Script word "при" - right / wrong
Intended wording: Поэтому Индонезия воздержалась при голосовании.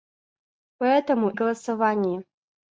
wrong